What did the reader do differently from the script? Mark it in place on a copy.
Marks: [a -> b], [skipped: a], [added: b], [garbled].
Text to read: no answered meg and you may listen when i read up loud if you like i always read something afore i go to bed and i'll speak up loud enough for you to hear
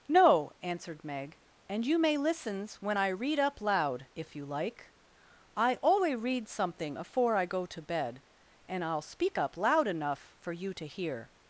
no answered meg and you may [listen -> listens] when i read up loud if you like i [always -> alway] read something afore i go to bed and i'll speak up loud enough for you to hear